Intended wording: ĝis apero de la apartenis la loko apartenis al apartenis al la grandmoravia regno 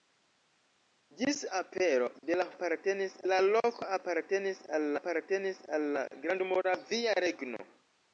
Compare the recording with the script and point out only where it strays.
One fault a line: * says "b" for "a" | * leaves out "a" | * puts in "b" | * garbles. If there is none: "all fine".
all fine